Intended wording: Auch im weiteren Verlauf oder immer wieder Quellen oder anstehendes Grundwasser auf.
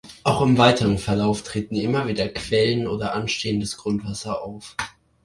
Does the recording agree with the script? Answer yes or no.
no